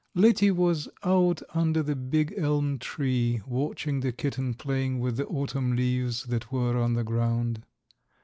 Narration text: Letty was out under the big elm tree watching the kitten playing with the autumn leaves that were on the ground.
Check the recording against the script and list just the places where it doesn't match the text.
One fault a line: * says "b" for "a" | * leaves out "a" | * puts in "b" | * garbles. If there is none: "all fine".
all fine